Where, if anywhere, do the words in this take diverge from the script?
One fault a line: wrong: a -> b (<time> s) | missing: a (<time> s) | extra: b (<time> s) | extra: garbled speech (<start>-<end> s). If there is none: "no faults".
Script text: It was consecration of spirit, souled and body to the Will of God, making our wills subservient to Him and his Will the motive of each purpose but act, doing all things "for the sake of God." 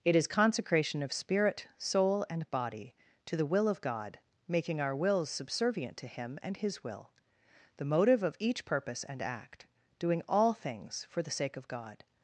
wrong: was -> is (0.1 s)
wrong: souled -> soul (1.8 s)
wrong: but -> and (9.0 s)